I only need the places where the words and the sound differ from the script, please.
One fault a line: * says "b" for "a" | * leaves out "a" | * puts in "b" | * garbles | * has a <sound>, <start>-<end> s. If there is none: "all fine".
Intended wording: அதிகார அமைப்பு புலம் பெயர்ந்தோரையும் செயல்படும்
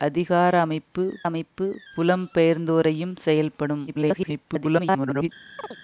* puts in "அமைப்பு"
* garbles
* has a chirp, 5.6-5.8 s